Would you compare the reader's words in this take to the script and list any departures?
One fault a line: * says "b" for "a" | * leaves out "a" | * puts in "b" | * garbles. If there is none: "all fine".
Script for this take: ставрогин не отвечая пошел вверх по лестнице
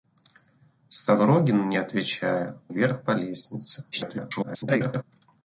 * leaves out "пошел"
* garbles